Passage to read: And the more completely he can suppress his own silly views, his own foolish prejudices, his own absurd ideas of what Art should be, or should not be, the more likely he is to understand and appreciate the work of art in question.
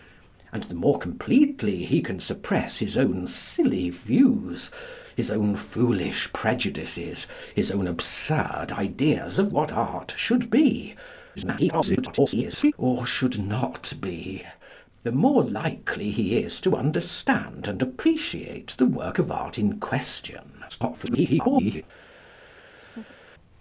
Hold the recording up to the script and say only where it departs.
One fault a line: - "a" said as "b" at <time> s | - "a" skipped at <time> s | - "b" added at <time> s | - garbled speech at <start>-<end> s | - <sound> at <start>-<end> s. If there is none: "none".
- garbled speech at 11.3-12.7 s
- garbled speech at 20.7-21.8 s
- laugh at 22.7-23.2 s